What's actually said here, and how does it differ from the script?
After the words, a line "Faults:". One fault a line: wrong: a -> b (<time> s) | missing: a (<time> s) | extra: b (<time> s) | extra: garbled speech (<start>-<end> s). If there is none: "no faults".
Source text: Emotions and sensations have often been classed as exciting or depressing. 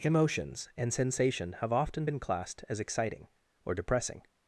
Emotions and sensation have often been classed as exciting or depressing.
Faults:
wrong: sensations -> sensation (0.9 s)